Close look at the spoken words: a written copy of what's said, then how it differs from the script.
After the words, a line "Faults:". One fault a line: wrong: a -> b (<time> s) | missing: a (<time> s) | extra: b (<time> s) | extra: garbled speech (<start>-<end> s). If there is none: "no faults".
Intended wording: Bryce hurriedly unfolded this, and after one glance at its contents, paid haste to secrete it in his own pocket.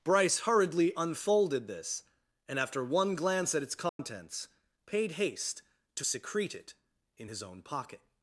Bryce hurriedly unfolded this, and after one glance at its contents, paid haste to secrete it in his own pocket.
Faults:
no faults